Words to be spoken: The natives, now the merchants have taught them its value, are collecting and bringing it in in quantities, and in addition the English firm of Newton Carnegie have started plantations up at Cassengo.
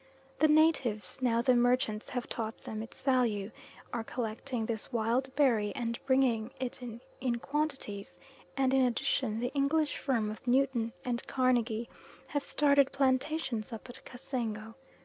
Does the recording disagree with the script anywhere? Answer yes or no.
yes